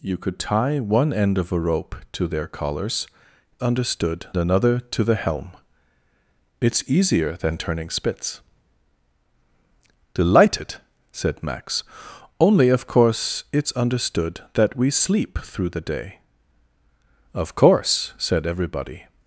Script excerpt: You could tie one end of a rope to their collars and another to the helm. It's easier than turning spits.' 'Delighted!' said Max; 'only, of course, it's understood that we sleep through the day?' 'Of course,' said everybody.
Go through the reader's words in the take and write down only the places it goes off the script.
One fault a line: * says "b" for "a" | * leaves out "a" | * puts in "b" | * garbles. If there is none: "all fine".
* says "understood" for "and"